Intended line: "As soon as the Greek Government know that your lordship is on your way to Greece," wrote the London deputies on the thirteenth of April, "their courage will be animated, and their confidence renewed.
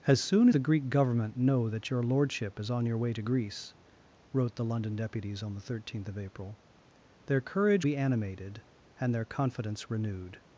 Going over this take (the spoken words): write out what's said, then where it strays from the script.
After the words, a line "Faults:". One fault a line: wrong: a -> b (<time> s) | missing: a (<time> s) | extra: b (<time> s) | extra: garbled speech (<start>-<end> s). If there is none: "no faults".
"As soon the Greek Government know that your lordship is on your way to Greece," wrote the London deputies on the thirteenth of April, "their courage be animated, and their confidence renewed.
Faults:
missing: as (0.5 s)
missing: will (7.9 s)